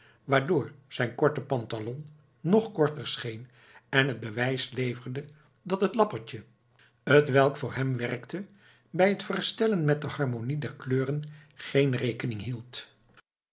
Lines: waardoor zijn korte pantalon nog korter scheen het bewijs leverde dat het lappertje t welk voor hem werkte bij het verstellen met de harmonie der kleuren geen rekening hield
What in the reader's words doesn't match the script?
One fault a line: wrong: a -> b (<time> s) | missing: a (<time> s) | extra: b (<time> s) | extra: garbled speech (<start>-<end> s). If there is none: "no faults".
extra: en (3.9 s)